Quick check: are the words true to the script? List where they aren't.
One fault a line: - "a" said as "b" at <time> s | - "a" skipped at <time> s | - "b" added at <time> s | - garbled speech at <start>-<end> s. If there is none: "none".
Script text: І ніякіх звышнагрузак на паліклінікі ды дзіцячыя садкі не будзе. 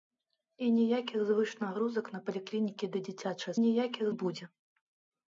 - "садкі" said as "ніякіх" at 3.6 s